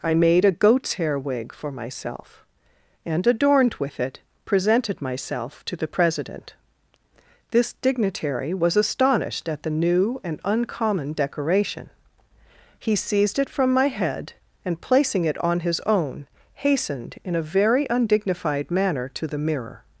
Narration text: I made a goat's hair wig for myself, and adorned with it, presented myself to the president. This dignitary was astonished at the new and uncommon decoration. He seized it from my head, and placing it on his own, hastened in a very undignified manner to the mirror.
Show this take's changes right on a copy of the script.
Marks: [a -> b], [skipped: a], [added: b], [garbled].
I made a goat's hair wig for myself, and adorned with it, presented myself to the president. This dignitary was astonished at the new and uncommon decoration. He seized it from my head, and placing it on his own, hastened in a very undignified manner to the mirror.